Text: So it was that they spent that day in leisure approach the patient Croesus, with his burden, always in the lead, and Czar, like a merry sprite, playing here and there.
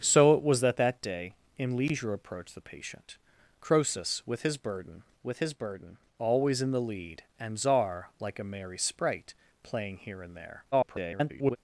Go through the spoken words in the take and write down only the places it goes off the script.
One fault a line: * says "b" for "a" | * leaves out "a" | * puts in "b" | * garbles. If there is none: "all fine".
* leaves out "they spent"
* puts in "with his burden"
* garbles